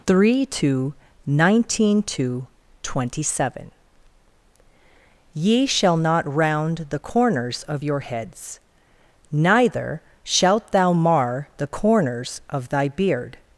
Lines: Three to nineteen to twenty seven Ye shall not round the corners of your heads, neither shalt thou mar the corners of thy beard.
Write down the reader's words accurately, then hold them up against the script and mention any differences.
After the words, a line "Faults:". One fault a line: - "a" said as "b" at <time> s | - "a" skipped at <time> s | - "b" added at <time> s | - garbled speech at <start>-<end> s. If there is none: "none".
Three to nineteen to twenty seven Ye shall not round the corners of your heads, neither shalt thou mar the corners of thy beard.
Faults:
none